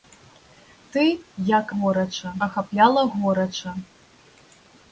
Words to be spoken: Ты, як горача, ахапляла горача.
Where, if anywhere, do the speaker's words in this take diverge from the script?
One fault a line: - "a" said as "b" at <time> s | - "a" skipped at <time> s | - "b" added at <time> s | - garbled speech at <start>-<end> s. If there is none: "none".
none